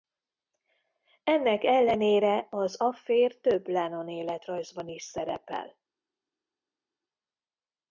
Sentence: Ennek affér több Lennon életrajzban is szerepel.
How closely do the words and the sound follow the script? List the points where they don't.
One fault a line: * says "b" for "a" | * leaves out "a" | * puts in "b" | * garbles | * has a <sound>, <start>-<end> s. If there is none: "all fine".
* puts in "ellenére az"